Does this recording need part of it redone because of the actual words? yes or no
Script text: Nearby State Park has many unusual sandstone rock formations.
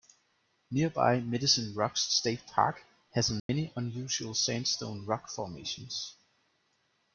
yes